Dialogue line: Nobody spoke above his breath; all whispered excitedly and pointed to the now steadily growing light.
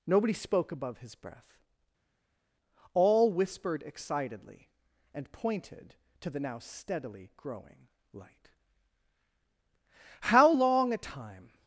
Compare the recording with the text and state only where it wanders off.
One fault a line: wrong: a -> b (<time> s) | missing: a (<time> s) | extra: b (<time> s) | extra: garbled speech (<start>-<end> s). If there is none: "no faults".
extra: How long a time (10.2 s)